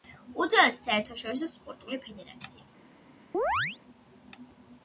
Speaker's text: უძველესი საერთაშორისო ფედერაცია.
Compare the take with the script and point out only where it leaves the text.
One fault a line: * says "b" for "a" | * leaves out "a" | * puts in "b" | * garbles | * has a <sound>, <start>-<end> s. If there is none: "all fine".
* puts in "სპორტული"
* has a chirp, 3.3-3.8 s